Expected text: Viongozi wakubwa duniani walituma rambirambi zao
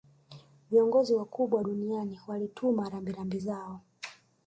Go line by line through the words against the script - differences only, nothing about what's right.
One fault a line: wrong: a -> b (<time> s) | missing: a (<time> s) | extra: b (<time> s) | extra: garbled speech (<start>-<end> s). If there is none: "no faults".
no faults